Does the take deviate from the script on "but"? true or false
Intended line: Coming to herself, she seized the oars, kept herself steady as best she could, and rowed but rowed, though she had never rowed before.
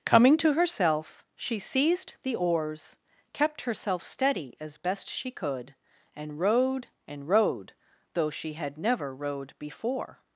true